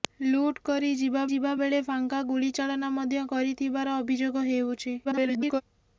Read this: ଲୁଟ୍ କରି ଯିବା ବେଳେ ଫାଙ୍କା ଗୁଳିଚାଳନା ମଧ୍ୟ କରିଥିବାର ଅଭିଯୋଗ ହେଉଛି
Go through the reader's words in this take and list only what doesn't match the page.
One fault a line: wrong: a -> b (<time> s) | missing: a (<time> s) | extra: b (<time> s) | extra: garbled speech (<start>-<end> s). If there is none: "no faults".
extra: ଯିବା (1.3 s)
extra: garbled speech (5.0-5.6 s)